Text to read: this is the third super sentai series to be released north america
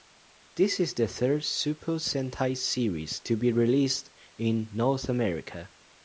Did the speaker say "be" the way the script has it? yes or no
yes